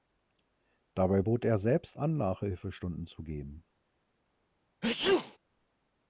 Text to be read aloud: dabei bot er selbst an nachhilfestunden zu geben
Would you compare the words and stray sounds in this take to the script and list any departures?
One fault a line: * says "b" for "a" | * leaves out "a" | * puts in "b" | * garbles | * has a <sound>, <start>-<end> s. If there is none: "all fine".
* has a sneeze, 4.8-5.4 s